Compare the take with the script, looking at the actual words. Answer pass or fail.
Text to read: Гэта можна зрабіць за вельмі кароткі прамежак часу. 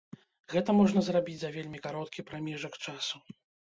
pass